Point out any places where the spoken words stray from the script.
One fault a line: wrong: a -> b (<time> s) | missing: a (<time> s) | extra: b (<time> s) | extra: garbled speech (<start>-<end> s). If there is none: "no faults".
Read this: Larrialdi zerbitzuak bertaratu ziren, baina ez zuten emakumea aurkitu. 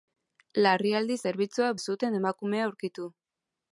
missing: bertaratu ziren baina (1.7 s)